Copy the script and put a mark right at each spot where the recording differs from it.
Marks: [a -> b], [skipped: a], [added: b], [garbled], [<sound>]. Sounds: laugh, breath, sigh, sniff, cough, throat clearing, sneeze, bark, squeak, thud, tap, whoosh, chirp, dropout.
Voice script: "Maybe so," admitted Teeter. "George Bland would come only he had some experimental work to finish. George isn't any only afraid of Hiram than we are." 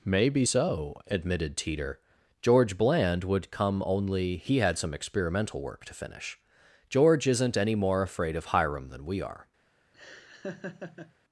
"Maybe so," admitted Teeter. "George Bland would come only he had some experimental work to finish. George isn't any [only -> more] afraid of Hiram than we are." [laugh]